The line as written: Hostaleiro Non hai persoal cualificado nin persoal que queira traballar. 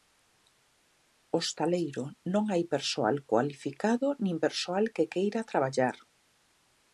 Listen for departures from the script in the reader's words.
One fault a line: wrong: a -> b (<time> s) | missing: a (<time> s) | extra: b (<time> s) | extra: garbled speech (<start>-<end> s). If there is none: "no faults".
no faults